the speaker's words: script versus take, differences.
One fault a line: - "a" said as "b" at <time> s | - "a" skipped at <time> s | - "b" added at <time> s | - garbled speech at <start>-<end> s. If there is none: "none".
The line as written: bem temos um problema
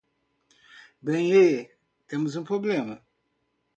- "e" added at 1.3 s